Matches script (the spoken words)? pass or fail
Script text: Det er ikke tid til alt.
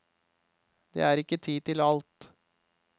pass